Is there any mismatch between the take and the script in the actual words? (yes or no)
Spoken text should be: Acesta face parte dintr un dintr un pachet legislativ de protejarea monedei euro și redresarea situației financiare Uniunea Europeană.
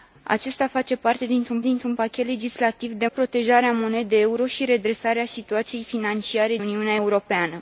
no